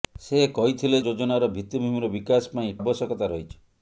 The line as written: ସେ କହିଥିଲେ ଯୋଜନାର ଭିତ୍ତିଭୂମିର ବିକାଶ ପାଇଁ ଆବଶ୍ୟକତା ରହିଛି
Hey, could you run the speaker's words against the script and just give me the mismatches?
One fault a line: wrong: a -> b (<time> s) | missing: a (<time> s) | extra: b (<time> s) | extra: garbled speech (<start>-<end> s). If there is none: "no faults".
no faults